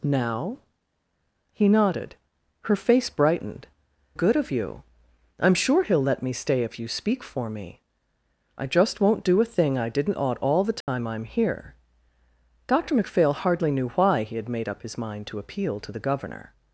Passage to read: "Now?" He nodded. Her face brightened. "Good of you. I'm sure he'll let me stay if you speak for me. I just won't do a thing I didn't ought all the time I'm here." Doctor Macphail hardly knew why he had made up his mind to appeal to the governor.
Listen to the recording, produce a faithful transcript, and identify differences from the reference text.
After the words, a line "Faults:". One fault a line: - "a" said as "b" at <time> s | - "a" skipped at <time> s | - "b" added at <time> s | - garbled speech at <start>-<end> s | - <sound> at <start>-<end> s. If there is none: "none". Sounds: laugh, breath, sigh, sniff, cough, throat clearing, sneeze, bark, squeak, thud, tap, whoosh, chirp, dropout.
"Now?" He nodded. Her face brightened. "Good of you. I'm sure he'll let me stay if you speak for me. I just won't do a thing I didn't ought all the time I'm here." Doctor Macphail hardly knew why he had made up his mind to appeal to the governor.
Faults:
- dropout at 10.8-10.9 s